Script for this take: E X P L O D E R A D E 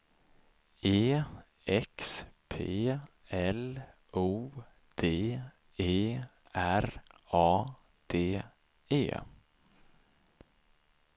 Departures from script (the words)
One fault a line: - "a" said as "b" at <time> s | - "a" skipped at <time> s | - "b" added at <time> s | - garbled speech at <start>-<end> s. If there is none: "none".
none